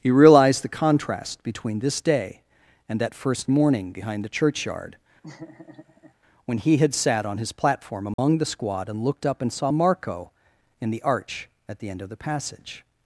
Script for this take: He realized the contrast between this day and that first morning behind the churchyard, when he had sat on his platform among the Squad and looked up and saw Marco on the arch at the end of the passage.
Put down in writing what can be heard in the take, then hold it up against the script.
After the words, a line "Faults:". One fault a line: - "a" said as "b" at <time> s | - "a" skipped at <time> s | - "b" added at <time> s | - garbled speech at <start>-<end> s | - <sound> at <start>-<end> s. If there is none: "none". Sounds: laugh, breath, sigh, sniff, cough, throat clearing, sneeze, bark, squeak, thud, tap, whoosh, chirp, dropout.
He realized the contrast between this day and that first morning behind the churchyard, when he had sat on his platform among the Squad and looked up and saw Marco in the arch at the end of the passage.
Faults:
- laugh at 5.2-6.1 s
- dropout at 8.1-8.2 s
- "on" said as "in" at 10.8 s